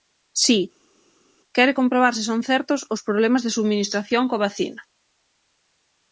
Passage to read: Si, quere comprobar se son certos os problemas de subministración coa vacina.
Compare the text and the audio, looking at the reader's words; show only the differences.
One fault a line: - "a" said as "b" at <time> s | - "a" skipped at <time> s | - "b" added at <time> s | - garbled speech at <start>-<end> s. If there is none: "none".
none